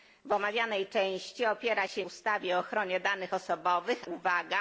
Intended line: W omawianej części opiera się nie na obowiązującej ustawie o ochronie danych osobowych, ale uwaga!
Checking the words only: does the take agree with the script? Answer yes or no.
no